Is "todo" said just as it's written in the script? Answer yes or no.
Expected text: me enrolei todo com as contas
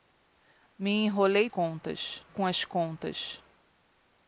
no